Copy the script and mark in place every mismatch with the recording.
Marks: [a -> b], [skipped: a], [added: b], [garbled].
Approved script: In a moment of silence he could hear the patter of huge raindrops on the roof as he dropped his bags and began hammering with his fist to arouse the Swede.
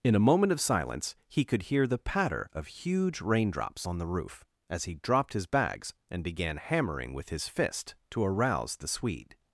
In a moment of silence he could hear the patter of huge raindrops on the roof as he dropped his bags and began hammering with his fist to arouse the Swede.